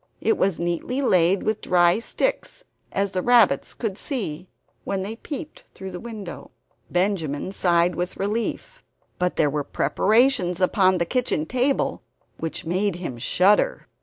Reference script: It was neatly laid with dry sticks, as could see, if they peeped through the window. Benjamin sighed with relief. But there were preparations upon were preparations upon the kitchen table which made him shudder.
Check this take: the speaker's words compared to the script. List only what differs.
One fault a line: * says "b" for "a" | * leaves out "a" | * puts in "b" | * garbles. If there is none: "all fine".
* puts in "the rabbits"
* says "when" for "if"
* leaves out "were preparations upon"